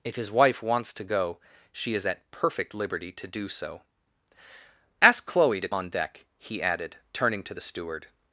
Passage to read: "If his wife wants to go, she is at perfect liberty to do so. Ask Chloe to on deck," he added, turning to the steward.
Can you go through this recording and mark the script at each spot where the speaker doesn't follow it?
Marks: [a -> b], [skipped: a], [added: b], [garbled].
"If his wife wants to go, she is at perfect liberty to do so. Ask Chloe to on deck," he added, turning to the steward.